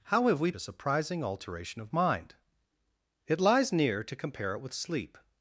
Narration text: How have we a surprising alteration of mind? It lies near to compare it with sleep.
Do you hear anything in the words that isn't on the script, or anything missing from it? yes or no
no